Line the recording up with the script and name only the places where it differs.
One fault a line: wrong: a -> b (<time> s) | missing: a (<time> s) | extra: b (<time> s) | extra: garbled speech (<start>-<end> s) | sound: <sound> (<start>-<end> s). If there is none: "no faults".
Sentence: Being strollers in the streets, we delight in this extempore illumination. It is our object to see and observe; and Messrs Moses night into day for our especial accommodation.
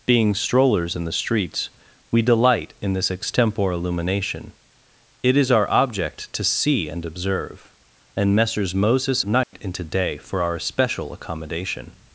sound: dropout (9.4-9.5 s)